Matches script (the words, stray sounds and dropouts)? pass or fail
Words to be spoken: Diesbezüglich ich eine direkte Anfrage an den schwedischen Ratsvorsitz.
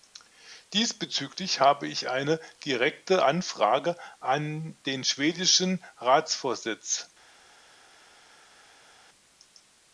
fail